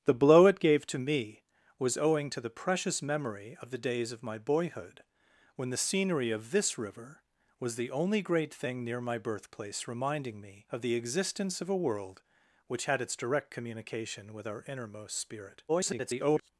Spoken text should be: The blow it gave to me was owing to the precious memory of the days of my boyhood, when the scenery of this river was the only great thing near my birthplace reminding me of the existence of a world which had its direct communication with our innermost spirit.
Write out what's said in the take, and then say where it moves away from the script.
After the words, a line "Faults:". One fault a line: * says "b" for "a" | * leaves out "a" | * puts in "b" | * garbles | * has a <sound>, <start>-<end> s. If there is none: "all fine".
The blow it gave to me was owing to the precious memory of the days of my boyhood, when the scenery of this river was the only great thing near my birthplace reminding me of the existence of a world which had its direct communication with our innermost spirit. [garbled]
Faults:
* garbles